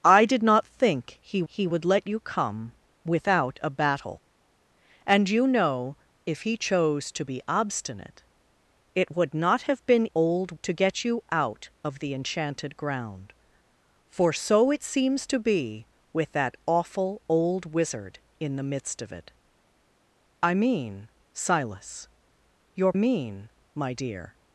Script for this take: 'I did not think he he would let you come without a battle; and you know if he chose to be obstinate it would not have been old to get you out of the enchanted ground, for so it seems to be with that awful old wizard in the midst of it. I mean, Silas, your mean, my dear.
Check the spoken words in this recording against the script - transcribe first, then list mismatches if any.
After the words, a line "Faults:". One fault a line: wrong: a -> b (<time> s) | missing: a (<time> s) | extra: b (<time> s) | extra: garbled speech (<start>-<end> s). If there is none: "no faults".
'I did not think he he would let you come without a battle; and you know if he chose to be obstinate it would not have been old to get you out of the enchanted ground, for so it seems to be with that awful old wizard in the midst of it. I mean, Silas, your mean, my dear.
Faults:
no faults